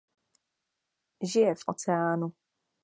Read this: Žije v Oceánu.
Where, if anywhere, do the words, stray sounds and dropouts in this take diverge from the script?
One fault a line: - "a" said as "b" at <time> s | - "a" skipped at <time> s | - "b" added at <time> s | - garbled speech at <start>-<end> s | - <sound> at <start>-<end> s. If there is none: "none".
none